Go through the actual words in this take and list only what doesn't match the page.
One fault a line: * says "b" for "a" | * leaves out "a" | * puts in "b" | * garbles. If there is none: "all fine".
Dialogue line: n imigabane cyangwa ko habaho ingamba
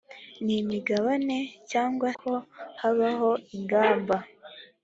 all fine